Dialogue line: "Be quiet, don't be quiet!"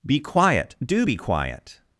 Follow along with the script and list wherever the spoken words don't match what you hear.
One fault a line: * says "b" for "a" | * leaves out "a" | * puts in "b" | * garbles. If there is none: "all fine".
* says "do" for "don't"